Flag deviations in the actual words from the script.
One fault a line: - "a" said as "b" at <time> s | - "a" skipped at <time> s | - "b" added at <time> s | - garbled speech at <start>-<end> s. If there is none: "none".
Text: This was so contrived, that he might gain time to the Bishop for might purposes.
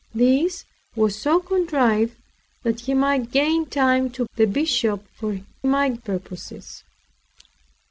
none